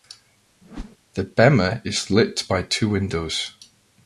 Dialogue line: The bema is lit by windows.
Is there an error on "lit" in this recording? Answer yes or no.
no